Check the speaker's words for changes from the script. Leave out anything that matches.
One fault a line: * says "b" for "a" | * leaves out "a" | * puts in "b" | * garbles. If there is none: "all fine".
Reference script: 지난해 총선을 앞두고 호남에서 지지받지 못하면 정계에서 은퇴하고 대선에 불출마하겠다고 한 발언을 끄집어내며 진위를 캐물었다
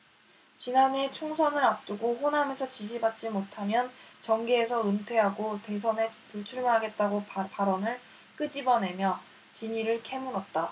* leaves out "한"